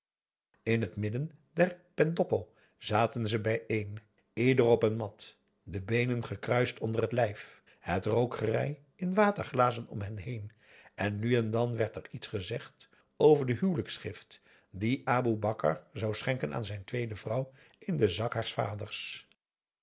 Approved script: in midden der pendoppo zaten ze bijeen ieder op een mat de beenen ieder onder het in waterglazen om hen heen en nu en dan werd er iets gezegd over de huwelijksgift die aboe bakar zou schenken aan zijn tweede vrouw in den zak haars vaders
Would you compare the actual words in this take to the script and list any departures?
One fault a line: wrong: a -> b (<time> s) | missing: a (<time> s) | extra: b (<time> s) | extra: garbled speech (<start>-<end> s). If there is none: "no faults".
extra: het (0.8 s)
wrong: ieder -> gekruist (6.2 s)
extra: lijf het rookgerei (7.1 s)